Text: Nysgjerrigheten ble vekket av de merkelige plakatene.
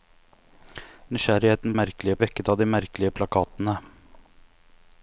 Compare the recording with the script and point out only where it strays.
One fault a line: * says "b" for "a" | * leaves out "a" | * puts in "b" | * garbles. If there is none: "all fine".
* says "merkelige" for "ble"